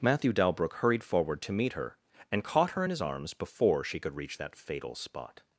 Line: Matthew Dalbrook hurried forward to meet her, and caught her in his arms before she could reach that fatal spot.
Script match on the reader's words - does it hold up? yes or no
yes